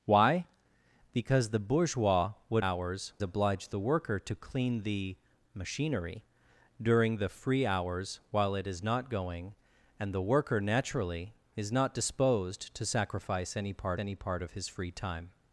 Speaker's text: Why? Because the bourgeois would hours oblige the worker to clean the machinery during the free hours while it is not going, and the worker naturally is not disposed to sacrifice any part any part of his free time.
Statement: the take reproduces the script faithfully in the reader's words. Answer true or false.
true